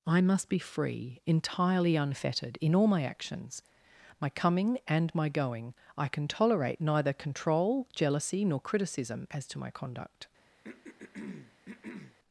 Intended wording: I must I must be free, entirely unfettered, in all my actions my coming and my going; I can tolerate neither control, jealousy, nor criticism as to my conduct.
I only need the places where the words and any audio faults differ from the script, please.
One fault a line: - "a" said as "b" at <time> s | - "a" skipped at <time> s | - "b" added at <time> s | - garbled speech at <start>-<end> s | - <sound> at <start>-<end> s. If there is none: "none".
- "I must" skipped at 0.5 s
- throat clearing at 10.6-12.2 s